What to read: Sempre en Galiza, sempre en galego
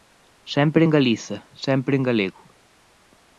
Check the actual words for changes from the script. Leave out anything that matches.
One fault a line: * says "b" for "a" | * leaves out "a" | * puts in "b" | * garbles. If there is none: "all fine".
all fine